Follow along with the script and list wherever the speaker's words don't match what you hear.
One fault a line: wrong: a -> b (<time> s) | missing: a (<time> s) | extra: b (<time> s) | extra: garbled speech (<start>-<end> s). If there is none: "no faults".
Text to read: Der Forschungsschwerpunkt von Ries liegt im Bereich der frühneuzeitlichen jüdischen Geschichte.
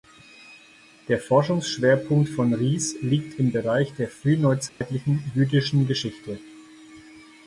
no faults